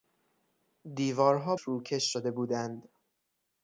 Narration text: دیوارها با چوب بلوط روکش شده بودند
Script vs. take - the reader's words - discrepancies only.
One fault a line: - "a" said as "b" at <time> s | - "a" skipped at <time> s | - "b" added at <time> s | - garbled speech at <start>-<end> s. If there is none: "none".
- "با چوب بلوط" skipped at 1.6 s